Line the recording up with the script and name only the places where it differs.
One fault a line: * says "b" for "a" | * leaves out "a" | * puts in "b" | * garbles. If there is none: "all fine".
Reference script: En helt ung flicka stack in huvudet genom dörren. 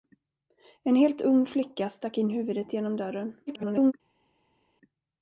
* garbles